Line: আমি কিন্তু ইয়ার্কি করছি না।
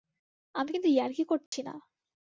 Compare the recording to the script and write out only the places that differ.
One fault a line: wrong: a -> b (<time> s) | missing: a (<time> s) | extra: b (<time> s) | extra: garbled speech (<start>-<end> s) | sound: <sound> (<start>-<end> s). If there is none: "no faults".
sound: dropout (1.5-1.5 s)